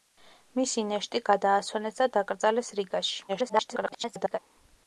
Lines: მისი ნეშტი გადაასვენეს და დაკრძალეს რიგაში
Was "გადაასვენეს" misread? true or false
false